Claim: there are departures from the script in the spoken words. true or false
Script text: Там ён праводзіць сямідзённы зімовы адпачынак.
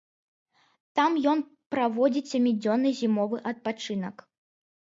false